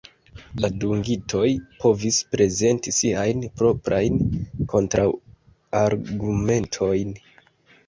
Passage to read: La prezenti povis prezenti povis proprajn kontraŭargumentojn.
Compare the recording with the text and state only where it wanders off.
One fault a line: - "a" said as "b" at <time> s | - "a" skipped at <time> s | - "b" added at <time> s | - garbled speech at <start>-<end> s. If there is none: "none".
- "prezenti" said as "dungitoj" at 0.8 s
- "povis" said as "siajn" at 3.0 s